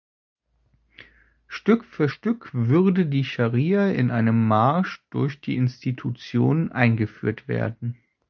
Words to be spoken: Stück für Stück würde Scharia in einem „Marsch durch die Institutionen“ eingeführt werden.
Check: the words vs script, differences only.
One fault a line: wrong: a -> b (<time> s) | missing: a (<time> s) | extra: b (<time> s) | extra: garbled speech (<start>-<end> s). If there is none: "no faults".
extra: die (3.0 s)